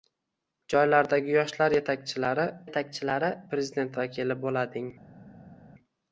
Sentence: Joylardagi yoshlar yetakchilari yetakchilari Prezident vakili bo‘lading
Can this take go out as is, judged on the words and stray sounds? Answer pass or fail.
pass